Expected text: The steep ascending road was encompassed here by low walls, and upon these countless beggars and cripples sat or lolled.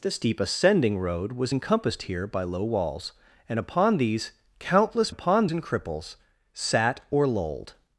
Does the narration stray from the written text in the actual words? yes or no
yes